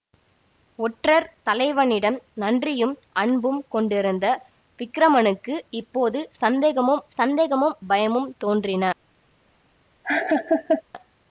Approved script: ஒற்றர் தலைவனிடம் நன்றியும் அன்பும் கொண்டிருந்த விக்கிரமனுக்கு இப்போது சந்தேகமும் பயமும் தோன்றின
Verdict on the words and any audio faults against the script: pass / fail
fail